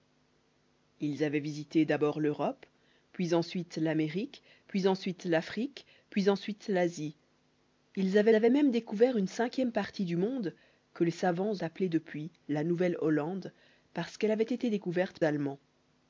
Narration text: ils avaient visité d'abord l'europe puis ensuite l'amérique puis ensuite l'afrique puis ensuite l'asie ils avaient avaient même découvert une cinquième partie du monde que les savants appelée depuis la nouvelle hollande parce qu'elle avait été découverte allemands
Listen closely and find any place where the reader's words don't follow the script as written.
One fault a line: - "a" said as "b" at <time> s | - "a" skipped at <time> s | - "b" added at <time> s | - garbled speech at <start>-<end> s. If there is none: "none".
none